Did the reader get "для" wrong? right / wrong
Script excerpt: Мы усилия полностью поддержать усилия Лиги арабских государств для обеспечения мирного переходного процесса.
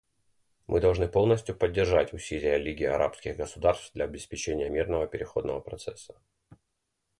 right